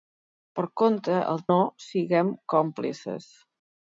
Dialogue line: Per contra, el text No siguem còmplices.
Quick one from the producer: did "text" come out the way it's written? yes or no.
no